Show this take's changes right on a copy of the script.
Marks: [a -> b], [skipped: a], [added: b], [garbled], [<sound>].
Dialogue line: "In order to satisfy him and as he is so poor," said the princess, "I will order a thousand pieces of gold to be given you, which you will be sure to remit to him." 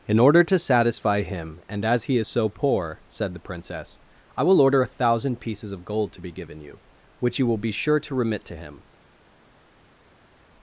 "In order to satisfy him and as he is so poor," said the princess, "I will order a thousand pieces of gold to be given you, which you will be sure to remit to him."